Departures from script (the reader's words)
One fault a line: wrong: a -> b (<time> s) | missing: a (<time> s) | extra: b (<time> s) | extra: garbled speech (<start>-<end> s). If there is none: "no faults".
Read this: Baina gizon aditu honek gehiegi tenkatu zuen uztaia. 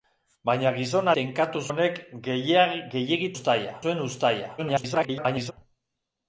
wrong: aditu -> tenkatu (1.2 s)
wrong: tenkatu -> uztaia (3.3 s)
extra: garbled speech (4.6-5.5 s)